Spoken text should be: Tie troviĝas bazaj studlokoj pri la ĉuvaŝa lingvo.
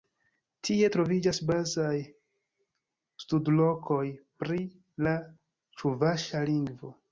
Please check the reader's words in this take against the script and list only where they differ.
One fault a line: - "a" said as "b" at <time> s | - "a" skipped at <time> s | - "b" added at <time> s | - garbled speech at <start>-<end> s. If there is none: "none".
none